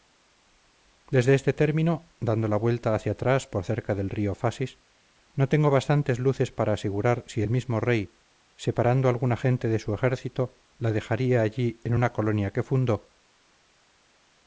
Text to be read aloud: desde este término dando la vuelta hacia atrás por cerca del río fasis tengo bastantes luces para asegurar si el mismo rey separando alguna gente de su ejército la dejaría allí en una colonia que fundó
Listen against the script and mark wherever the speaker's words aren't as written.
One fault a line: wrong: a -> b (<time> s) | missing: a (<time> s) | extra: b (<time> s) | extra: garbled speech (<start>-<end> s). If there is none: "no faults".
extra: no (5.3 s)